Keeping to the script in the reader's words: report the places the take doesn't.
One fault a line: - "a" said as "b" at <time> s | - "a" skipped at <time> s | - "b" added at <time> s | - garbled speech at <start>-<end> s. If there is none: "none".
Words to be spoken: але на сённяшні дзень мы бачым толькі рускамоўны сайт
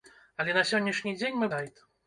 - "бачым толькі рускамоўны" skipped at 1.5 s